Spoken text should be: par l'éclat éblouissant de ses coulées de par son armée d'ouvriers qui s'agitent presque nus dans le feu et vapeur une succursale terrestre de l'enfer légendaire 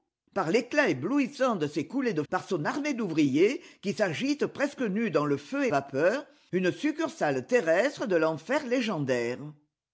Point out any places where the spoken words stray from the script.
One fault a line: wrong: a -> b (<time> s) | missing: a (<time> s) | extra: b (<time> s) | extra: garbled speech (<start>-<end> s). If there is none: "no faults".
no faults